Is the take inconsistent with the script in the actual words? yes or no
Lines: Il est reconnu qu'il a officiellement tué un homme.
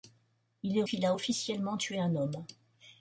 yes